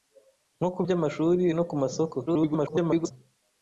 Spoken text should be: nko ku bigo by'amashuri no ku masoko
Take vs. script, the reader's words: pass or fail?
fail